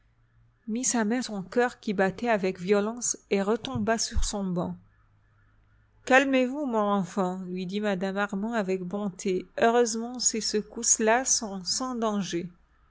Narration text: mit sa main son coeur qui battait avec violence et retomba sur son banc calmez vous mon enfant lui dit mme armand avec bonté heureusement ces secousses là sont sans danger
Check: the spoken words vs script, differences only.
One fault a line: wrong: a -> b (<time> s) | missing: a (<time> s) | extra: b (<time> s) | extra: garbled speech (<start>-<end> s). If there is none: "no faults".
no faults